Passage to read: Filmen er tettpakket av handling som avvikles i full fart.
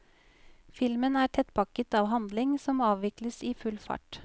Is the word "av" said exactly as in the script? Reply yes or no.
yes